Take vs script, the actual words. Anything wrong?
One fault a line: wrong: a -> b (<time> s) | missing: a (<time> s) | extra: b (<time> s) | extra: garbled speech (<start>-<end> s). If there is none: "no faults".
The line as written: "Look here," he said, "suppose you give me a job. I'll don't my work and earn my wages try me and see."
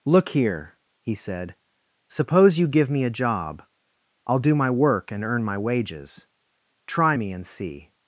wrong: don't -> do (4.4 s)